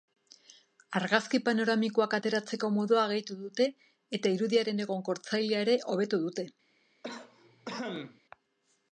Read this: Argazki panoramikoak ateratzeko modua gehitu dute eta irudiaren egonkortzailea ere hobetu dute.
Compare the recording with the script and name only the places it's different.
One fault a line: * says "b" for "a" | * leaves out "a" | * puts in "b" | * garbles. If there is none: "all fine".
all fine